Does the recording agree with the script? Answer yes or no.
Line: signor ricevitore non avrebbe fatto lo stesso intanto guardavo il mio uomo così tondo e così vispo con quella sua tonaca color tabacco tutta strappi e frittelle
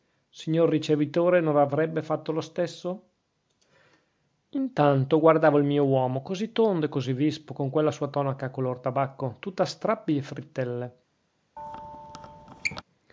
yes